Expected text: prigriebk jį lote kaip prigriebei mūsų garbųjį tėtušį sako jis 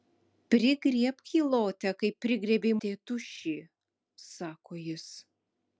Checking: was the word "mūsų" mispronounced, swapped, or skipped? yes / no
yes